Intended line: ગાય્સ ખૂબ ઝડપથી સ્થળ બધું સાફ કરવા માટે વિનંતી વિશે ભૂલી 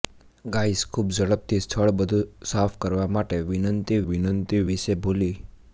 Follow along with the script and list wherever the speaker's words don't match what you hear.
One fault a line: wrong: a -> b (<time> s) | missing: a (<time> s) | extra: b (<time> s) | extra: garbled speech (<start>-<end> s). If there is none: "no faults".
extra: વિનંતી (4.1 s)